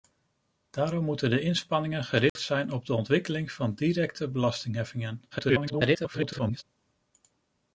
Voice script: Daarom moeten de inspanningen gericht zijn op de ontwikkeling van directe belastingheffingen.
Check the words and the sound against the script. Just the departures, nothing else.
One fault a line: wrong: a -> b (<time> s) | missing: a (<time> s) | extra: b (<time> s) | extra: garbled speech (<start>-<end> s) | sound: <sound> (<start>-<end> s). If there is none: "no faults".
sound: dropout (2.3-2.4 s)
extra: garbled speech (5.3-6.6 s)